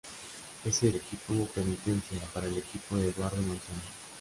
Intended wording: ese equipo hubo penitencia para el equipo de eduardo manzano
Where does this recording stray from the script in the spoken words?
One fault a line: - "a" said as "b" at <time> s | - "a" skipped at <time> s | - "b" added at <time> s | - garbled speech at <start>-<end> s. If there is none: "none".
none